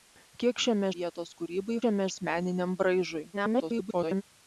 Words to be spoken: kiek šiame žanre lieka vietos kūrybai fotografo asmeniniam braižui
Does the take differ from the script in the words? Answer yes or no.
yes